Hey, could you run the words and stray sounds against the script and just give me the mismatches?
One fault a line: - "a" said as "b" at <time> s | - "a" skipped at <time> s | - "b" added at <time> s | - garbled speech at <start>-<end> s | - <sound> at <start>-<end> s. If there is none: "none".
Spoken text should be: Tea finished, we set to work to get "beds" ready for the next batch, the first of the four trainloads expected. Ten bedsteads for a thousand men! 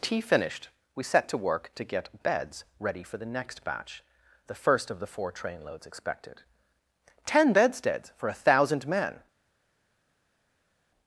none